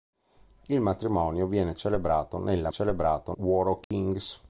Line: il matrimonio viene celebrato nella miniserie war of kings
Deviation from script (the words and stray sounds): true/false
true